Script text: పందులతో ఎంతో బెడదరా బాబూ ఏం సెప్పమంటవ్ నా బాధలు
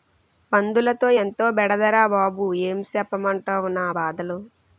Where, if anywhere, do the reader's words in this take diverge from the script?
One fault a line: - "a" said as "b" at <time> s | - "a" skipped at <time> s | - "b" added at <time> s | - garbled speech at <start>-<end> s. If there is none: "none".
none